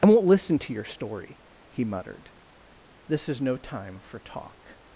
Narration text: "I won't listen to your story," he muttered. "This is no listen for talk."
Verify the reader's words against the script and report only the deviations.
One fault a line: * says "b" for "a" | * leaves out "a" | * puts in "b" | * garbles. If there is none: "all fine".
* says "time" for "listen"